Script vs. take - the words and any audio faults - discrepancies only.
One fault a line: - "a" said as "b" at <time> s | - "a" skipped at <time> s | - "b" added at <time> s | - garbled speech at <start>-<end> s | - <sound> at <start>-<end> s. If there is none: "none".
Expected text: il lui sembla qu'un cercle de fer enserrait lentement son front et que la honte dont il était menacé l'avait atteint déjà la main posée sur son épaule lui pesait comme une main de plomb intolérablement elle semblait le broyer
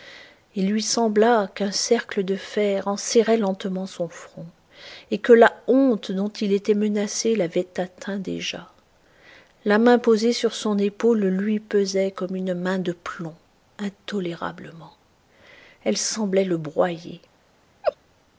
- laugh at 17.8-18.0 s